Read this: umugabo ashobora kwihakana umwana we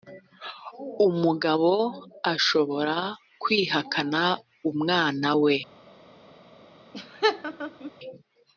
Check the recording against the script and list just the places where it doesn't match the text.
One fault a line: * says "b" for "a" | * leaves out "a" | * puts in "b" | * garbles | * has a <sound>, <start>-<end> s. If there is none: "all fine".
* has a laugh, 6.9-7.9 s